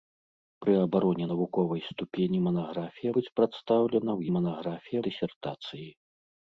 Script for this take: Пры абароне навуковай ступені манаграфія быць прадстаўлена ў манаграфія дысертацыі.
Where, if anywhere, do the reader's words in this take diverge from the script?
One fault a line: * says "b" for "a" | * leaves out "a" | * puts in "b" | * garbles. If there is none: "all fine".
all fine